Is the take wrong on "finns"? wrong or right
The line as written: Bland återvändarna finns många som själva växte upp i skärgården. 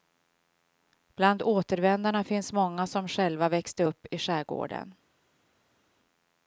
right